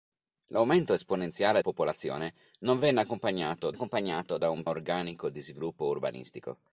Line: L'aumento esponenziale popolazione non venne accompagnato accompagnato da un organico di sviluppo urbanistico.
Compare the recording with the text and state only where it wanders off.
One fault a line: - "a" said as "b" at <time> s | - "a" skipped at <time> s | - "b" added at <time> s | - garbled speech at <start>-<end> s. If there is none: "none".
none